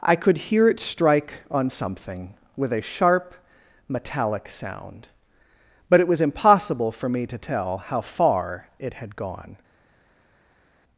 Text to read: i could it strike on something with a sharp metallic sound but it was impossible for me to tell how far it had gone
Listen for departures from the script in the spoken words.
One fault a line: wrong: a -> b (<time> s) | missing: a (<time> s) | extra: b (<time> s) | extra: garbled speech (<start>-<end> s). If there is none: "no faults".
extra: hear (0.4 s)